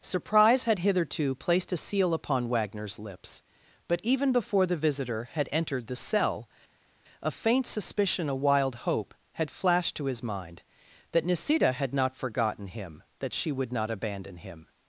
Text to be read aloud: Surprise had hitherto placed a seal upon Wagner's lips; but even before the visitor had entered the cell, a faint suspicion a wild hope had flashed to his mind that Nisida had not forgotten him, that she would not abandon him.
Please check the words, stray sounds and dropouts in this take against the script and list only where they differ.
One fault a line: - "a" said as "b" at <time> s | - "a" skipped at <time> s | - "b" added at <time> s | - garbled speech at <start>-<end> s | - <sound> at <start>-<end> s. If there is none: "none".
none